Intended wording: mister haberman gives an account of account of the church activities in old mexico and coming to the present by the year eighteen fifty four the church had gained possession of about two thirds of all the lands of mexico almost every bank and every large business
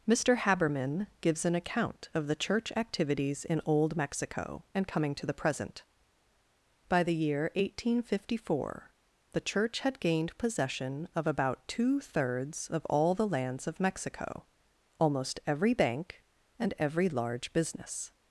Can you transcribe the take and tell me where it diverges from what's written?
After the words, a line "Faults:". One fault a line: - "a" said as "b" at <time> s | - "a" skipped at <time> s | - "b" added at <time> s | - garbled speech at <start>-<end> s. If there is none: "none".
mister haberman gives an account of the church activities in old mexico and coming to the present by the year eighteen fifty four the church had gained possession of about two thirds of all the lands of mexico almost every bank and every large business
Faults:
- "account of" skipped at 2.3 s